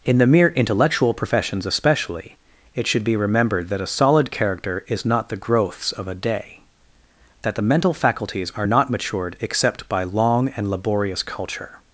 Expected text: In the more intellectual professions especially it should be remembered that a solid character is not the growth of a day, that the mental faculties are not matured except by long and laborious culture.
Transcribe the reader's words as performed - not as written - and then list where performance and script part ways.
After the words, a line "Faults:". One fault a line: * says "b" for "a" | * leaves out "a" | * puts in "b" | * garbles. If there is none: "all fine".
In the mere intellectual professions especially it should be remembered that a solid character is not the growths of a day, that the mental faculties are not matured except by long and laborious culture.
Faults:
* says "mere" for "more"
* says "growths" for "growth"